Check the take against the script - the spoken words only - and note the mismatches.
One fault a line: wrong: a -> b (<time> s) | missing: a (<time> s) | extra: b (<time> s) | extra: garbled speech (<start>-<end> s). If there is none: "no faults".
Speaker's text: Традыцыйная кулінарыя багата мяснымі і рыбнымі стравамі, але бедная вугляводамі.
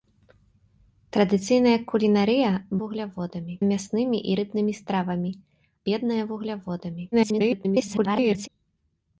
wrong: багата -> вугляводамі (2.8 s)
missing: але (5.3 s)
extra: garbled speech (7.1-8.5 s)